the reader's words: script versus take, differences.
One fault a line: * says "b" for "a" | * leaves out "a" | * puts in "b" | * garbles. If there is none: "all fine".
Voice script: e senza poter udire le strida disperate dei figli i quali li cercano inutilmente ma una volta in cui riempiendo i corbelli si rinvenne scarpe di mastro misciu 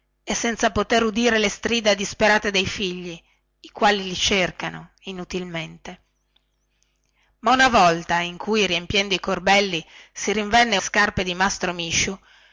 all fine